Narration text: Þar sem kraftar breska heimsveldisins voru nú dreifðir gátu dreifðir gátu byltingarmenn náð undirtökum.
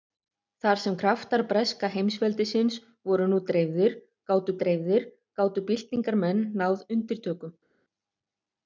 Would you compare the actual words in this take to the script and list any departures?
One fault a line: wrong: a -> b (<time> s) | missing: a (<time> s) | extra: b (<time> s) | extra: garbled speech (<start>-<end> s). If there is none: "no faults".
no faults